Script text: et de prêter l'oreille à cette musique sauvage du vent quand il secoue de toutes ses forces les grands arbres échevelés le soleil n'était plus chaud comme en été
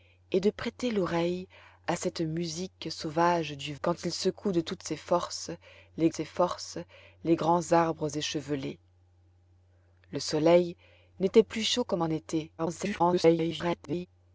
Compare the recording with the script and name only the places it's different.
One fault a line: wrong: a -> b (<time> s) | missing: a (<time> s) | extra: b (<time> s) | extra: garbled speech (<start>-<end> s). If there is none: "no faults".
missing: vent (3.8 s)
extra: ses forces les (6.1 s)
extra: garbled speech (12.6-14.1 s)